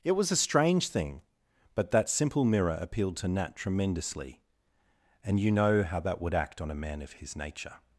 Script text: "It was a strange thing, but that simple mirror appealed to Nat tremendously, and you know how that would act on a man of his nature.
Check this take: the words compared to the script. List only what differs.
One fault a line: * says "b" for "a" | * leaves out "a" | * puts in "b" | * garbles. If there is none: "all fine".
all fine